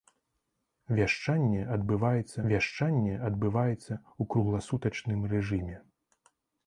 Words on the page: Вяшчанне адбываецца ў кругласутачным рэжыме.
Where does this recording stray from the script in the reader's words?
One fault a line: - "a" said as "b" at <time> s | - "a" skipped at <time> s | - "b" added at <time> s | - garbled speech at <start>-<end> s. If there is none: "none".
- "вяшчанне адбываецца" added at 2.5 s